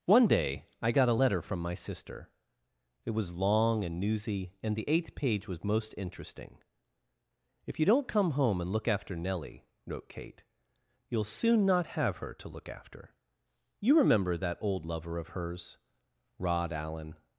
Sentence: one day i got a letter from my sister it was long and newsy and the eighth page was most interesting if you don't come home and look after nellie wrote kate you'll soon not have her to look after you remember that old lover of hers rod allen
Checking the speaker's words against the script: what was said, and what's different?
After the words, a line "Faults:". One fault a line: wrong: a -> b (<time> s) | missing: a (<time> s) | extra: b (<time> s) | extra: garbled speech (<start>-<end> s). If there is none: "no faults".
one day i got a letter from my sister it was long and newsy and the eighth page was most interesting if you don't come home and look after nellie wrote kate you'll soon not have her to look after you remember that old lover of hers rod allen
Faults:
no faults